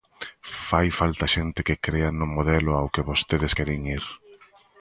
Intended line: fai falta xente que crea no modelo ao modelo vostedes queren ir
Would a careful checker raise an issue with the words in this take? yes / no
yes